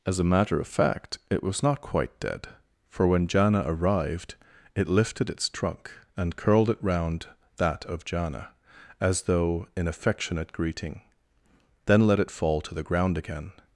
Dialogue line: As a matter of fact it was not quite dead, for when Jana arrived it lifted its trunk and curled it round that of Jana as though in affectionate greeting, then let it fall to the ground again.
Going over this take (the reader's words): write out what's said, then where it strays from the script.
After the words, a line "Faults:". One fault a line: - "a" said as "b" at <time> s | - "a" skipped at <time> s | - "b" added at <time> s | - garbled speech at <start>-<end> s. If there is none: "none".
As a matter of fact it was not quite dead, for when Jana arrived it lifted its trunk and curled it round that of Jana as though in affectionate greeting, then let it fall to the ground again.
Faults:
none